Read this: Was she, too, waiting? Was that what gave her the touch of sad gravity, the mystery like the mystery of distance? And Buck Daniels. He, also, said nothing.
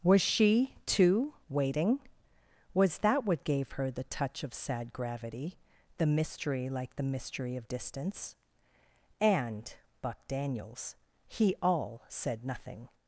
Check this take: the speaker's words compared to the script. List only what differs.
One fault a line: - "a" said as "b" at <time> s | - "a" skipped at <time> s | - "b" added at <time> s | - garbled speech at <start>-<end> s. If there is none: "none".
- "also" said as "all" at 11.6 s